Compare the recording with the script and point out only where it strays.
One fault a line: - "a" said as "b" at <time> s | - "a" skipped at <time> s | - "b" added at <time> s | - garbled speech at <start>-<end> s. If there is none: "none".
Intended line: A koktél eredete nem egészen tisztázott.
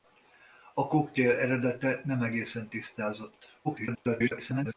- garbled speech at 3.6-4.7 s